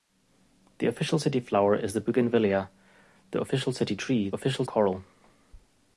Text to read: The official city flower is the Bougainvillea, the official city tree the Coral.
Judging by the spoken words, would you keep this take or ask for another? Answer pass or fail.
fail